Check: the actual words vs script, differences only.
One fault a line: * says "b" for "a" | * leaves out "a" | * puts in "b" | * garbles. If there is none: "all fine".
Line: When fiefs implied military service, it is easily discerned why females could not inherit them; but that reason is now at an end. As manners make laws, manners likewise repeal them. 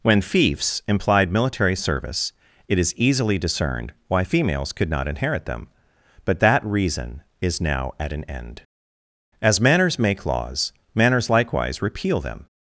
all fine